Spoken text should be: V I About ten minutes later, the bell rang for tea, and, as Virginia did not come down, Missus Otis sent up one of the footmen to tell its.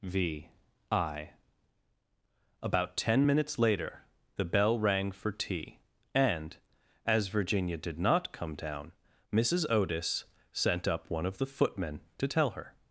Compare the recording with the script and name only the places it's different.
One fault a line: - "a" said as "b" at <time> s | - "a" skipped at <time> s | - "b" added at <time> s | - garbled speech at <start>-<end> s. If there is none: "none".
- "its" said as "her" at 12.5 s